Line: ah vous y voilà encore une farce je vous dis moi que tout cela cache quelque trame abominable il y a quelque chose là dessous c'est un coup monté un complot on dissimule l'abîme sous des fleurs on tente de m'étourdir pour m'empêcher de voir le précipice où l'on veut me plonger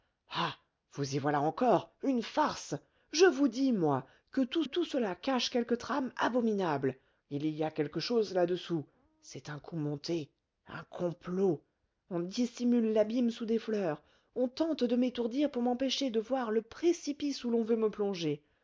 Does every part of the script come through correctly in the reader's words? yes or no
no